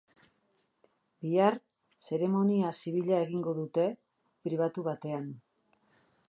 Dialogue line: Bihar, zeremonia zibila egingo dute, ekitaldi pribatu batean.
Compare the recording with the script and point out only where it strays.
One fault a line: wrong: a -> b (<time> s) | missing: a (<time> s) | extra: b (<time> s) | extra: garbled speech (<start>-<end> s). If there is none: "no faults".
missing: ekitaldi (3.9 s)